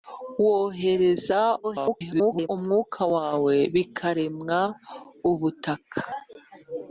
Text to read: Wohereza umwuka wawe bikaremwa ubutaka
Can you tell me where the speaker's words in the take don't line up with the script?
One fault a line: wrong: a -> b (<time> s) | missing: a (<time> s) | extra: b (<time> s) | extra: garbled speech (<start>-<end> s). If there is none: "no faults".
extra: garbled speech (1.6-2.5 s)